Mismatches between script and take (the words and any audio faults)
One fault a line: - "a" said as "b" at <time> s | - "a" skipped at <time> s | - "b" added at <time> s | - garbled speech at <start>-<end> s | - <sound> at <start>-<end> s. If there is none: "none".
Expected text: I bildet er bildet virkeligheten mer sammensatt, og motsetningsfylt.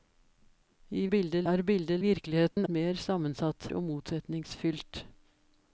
- dropout at 2.5-2.6 s